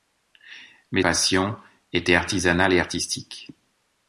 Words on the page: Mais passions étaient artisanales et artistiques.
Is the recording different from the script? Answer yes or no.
no